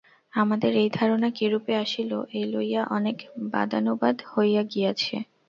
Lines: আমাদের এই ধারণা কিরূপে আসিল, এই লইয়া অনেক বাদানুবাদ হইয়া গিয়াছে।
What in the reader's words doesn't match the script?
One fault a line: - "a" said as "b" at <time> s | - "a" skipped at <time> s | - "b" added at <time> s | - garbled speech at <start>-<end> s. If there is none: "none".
none